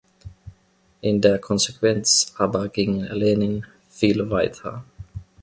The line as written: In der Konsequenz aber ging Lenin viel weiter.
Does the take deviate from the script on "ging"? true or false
false